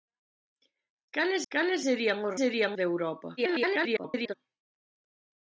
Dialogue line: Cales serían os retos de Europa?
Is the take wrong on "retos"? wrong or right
wrong